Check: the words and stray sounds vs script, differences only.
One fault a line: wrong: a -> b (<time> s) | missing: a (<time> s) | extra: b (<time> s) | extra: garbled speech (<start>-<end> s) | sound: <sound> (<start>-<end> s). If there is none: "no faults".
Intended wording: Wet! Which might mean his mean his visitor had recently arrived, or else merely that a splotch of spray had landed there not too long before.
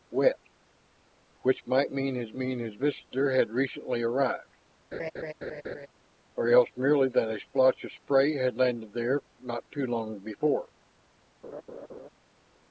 sound: laugh (4.9-5.9 s)
sound: laugh (11.4-12.1 s)